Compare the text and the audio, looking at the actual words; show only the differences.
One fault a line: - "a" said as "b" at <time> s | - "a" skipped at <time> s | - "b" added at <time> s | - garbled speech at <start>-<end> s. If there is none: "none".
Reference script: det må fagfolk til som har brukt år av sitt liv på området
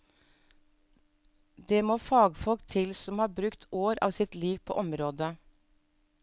none